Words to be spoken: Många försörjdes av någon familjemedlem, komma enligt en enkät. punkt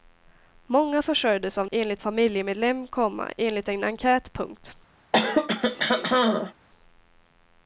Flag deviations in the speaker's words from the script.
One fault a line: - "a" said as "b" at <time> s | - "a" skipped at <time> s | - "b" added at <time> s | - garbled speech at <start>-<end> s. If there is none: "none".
- "någon" said as "enligt" at 1.7 s